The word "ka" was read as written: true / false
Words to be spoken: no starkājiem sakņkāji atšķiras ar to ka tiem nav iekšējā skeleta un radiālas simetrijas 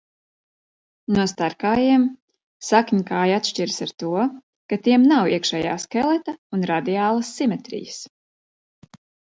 true